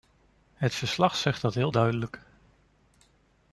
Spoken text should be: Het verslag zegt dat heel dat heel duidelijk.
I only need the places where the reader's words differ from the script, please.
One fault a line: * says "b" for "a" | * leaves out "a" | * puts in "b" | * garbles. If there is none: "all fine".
* leaves out "dat heel"